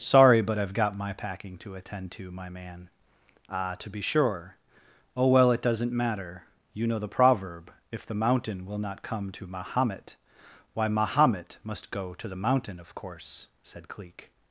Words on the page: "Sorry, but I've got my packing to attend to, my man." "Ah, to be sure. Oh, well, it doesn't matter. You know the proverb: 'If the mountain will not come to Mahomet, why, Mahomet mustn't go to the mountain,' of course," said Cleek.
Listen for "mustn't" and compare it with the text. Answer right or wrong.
wrong